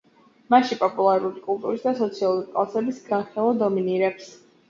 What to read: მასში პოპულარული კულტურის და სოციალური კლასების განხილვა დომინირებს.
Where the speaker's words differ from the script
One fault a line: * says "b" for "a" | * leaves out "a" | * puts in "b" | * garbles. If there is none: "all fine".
all fine